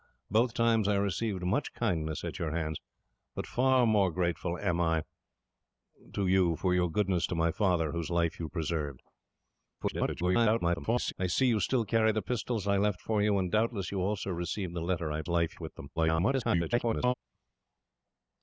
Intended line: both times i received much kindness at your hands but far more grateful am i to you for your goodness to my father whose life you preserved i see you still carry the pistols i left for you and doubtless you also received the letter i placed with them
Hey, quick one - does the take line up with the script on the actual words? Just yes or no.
no